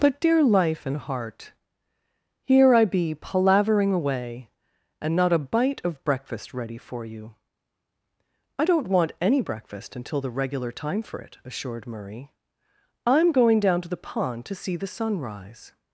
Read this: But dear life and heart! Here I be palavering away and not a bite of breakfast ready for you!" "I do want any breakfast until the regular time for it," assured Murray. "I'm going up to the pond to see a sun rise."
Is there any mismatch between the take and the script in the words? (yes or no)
yes